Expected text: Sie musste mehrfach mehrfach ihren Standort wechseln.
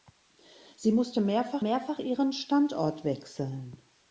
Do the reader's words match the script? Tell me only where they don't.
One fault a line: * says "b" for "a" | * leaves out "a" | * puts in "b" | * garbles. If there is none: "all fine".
all fine